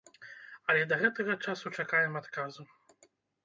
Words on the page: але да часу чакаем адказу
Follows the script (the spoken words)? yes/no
no